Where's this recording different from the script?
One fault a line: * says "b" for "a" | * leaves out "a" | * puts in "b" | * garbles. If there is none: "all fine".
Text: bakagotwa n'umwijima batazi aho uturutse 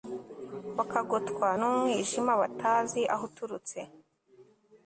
all fine